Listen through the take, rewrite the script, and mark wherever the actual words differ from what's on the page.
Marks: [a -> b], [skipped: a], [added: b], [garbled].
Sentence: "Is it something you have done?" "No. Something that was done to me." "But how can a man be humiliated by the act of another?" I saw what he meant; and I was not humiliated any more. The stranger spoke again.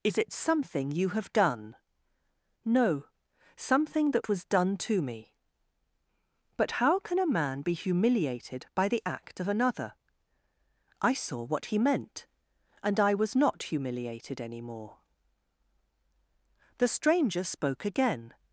"Is it something you have done?" "No. Something that was done to me." "But how can a man be humiliated by the act of another?" I saw what he meant; and I was not humiliated any more. The stranger spoke again.